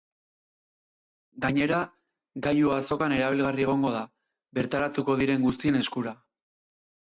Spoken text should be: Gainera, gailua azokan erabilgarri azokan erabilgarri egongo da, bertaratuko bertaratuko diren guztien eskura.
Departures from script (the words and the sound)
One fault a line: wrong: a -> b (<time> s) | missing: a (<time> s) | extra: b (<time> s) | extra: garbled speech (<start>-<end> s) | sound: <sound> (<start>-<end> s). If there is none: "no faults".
missing: azokan erabilgarri (3.7 s)
missing: bertaratuko (5.2 s)